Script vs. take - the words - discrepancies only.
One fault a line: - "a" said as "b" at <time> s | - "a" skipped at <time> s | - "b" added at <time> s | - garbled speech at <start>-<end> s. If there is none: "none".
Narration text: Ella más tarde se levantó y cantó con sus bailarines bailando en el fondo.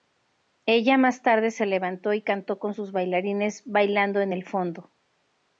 none